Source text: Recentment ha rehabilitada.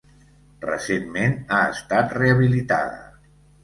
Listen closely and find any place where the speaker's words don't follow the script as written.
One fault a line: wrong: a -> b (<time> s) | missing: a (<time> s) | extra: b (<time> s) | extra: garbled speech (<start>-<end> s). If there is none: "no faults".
extra: estat (1.8 s)